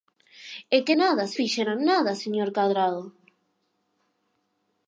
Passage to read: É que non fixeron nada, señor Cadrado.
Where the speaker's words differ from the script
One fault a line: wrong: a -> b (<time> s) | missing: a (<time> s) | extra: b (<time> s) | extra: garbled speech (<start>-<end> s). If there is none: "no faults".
wrong: non -> nada (1.0 s)